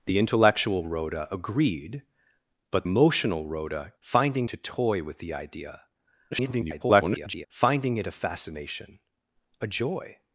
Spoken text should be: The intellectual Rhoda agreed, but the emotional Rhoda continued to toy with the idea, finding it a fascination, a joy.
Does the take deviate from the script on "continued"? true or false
true